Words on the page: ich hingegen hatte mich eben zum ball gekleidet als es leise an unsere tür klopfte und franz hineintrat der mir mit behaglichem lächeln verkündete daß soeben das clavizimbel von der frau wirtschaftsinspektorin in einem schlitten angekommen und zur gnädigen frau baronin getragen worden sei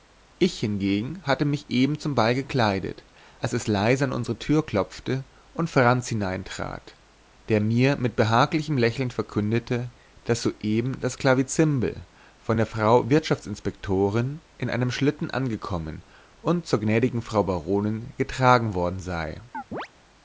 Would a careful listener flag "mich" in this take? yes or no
no